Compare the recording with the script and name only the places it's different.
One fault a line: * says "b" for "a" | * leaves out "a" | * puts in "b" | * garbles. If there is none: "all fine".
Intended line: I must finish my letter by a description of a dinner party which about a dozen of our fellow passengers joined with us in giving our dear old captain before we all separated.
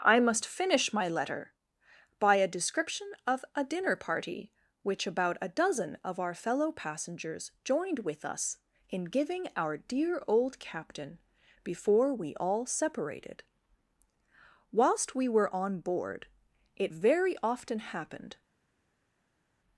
* puts in "Whilst we were on board it very often happened"